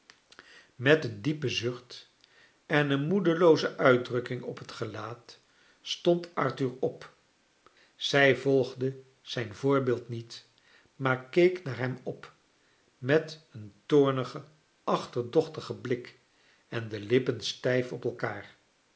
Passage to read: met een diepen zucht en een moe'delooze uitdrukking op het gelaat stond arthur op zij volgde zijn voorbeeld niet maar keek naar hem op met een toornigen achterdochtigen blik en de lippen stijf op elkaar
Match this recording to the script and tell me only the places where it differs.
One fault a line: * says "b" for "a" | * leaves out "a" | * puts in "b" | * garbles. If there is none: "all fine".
all fine